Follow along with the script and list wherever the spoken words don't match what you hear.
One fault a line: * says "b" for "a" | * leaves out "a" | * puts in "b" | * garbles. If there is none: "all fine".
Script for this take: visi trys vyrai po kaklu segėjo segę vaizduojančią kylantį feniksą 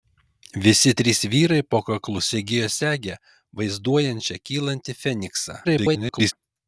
* garbles